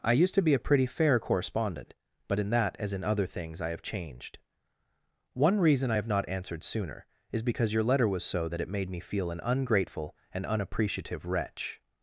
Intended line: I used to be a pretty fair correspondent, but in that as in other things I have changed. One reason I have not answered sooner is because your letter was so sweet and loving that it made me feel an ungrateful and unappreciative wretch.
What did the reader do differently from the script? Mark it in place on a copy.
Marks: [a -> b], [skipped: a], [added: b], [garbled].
I used to be a pretty fair correspondent, but in that as in other things I have changed. One reason I have not answered sooner is because your letter was so [skipped: sweet and loving] that it made me feel an ungrateful and unappreciative wretch.